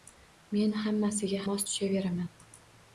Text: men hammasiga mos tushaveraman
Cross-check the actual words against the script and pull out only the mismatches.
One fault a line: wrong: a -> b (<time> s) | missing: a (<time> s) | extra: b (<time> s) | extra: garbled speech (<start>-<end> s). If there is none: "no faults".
no faults